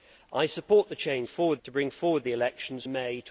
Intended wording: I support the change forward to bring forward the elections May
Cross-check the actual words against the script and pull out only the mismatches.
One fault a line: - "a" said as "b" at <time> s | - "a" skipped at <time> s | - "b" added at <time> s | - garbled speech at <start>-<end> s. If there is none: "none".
none